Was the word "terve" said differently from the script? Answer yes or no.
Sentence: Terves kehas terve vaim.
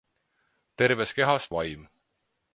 yes